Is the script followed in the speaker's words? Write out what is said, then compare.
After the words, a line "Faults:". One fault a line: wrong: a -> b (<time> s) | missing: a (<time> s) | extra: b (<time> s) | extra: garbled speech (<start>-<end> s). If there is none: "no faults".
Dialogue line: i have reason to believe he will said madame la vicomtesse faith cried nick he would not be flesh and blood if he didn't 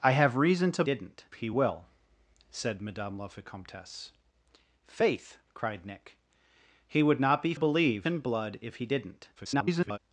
i have reason to didn't he will said madame la vicomtesse faith cried nick he would not be believe and blood if he didn't [garbled]
Faults:
wrong: believe -> didn't (0.8 s)
wrong: flesh -> believe (7.5 s)
extra: garbled speech (9.4-10.0 s)